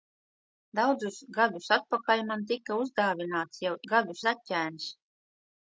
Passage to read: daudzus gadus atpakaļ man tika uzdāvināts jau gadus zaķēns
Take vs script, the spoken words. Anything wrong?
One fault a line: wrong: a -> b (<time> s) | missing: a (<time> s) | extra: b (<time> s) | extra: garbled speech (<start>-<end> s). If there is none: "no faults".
no faults